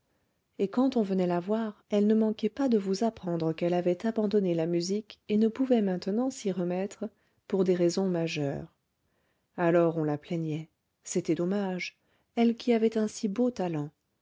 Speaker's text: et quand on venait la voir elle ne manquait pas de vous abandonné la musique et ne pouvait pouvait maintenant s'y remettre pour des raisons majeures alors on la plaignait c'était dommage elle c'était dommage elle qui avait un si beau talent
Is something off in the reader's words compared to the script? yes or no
yes